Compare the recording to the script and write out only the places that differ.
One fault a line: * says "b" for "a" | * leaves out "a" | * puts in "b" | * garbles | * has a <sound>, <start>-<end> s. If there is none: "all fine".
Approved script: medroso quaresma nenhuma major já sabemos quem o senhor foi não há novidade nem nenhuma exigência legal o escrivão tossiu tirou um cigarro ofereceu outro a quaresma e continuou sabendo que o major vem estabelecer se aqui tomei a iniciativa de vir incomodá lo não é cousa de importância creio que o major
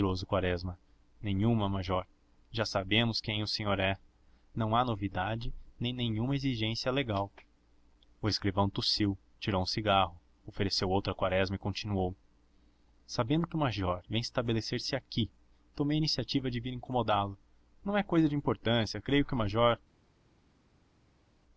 * says "é" for "foi"